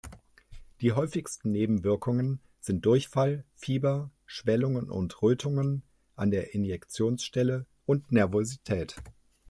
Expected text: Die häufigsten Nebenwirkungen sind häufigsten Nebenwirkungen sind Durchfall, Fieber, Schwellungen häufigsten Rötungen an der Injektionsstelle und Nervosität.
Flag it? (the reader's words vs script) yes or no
yes